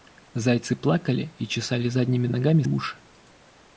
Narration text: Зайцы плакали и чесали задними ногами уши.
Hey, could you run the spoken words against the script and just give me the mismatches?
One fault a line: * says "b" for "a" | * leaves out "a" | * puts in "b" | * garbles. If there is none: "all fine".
all fine